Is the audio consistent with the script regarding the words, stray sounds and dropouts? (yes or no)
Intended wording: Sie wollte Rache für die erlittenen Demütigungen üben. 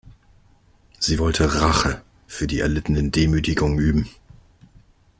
yes